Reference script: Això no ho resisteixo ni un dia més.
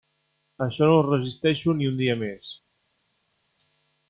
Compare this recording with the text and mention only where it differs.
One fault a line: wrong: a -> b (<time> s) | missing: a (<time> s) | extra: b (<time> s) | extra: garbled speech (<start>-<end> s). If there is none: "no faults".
no faults